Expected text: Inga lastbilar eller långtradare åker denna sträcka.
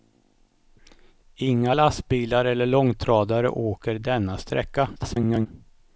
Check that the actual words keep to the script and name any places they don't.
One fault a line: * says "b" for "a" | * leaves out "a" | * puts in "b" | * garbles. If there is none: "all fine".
* garbles